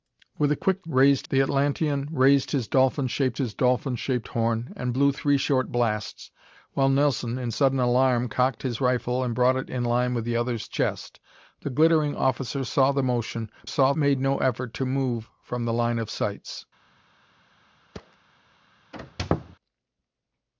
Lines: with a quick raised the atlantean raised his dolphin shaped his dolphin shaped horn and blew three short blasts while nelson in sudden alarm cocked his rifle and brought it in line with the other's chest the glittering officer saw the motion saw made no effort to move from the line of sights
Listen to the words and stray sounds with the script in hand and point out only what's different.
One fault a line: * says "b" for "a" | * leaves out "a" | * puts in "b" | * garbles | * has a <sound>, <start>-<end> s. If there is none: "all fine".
* has a thud, 17.9-18.2 s
* has a squeak, 18.9-19.6 s